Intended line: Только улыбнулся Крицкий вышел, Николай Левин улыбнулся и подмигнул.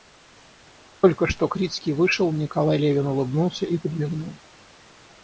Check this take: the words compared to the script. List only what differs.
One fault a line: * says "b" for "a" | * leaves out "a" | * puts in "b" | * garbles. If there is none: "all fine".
* says "что" for "улыбнулся"